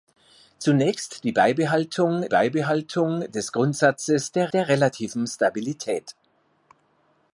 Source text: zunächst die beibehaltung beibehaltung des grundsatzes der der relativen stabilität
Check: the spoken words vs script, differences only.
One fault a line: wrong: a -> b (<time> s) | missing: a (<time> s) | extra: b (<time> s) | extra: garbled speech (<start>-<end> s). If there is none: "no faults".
no faults